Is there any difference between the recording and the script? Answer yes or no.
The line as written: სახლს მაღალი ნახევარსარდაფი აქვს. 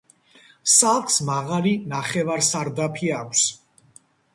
no